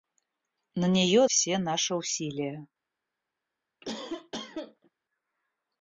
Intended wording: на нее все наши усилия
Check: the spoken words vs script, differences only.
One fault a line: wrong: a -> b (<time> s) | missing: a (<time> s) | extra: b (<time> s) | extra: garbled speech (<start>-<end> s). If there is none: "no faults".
no faults